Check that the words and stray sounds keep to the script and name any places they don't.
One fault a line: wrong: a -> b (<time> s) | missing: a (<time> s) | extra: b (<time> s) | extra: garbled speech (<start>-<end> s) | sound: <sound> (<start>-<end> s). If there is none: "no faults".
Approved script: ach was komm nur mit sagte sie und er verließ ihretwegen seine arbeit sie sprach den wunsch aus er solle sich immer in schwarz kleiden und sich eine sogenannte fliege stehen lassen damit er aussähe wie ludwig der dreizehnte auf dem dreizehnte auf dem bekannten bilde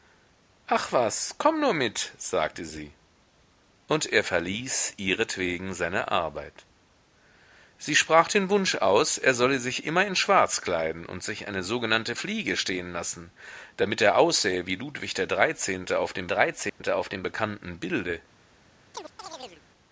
sound: dropout (16.7-16.8 s)
sound: chirp (18.9-19.6 s)